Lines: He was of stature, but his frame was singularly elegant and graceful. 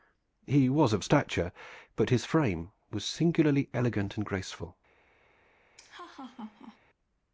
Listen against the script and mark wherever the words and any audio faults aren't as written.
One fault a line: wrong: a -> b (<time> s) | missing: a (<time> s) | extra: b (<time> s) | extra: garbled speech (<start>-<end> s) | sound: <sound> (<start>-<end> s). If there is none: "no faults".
sound: laugh (5.8-6.8 s)